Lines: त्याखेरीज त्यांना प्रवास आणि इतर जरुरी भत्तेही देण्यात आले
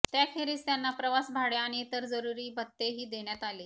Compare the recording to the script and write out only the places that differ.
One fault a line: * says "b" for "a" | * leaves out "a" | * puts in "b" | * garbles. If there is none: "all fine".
* puts in "भाडे"